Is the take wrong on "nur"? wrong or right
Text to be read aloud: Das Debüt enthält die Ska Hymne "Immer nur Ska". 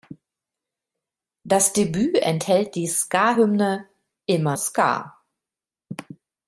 wrong